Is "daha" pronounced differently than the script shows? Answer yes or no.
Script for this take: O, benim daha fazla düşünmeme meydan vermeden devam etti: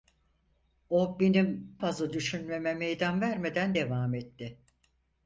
yes